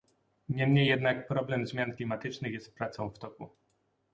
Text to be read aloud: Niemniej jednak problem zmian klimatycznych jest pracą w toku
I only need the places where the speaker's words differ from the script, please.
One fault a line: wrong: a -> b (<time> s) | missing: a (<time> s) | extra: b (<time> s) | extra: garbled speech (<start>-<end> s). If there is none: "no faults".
no faults